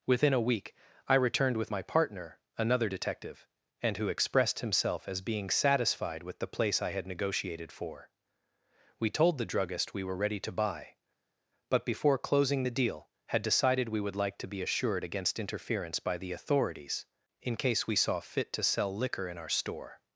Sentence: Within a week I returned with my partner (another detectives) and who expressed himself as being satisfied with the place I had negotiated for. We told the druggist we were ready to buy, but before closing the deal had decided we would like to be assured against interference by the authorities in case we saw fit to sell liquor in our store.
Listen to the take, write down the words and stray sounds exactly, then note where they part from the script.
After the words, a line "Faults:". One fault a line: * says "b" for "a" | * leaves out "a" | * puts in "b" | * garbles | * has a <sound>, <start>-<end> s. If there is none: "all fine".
Within a week I returned with my partner (another detective) and who expressed himself as being satisfied with the place I had negotiated for. We told the druggist we were ready to buy, but before closing the deal had decided we would like to be assured against interference by the authorities in case we saw fit to sell liquor in our store.
Faults:
* says "detective" for "detectives"